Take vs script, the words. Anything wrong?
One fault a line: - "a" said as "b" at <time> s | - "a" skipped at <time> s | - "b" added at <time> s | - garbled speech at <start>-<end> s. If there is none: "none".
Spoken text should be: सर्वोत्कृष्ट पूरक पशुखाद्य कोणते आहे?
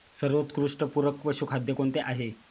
none